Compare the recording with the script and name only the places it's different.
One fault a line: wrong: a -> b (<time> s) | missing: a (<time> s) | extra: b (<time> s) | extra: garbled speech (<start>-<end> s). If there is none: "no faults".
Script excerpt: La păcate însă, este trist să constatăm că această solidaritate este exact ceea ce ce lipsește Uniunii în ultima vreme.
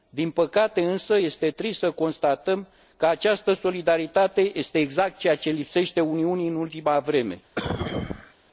wrong: La -> Din (0.1 s)
missing: ce (5.5 s)